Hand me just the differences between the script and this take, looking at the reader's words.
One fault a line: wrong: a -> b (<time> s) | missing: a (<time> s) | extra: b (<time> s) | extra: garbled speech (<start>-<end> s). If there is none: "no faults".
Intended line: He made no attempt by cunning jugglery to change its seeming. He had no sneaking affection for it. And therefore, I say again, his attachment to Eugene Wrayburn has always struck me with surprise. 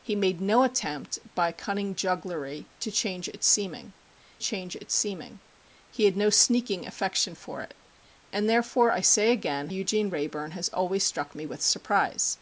extra: change its seeming (4.4 s)
missing: his attachment to (9.7 s)